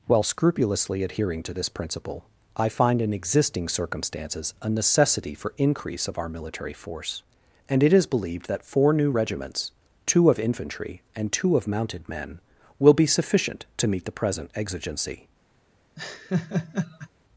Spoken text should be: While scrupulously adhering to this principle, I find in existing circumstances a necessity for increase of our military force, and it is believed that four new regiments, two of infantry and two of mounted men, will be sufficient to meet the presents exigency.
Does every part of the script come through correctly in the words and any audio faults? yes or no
no